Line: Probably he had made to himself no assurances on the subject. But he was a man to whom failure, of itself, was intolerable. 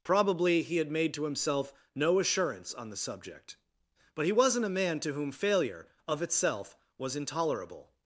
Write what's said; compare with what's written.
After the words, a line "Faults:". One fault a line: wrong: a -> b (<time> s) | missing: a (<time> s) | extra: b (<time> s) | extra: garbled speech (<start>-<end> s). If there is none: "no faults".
Probably he had made to himself no assurance on the subject. But he wasn't a man to whom failure, of itself, was intolerable.
Faults:
wrong: assurances -> assurance (2.2 s)
wrong: was -> wasn't (4.3 s)